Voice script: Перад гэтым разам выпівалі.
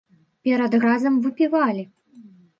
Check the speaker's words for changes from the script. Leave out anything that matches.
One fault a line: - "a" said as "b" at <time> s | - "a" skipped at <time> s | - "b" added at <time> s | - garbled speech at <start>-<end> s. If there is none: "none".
- "гэтым" skipped at 0.8 s